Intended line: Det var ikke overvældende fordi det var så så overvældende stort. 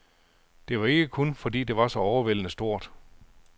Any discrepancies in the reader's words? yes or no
yes